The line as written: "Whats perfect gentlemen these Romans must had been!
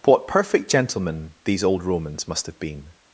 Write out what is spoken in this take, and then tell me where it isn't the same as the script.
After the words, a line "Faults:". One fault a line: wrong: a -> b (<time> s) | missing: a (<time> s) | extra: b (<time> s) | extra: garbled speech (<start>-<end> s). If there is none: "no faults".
"What perfect gentlemen these old Romans must have been!
Faults:
wrong: Whats -> What (0.0 s)
extra: old (1.6 s)
wrong: had -> have (2.5 s)